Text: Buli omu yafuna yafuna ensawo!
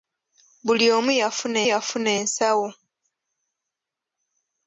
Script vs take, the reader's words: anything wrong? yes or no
no